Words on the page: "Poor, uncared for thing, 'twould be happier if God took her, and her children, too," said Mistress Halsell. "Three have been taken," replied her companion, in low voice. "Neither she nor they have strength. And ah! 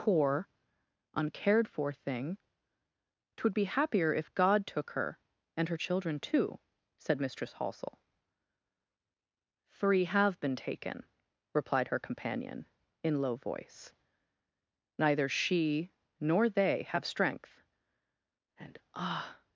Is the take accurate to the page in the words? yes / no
yes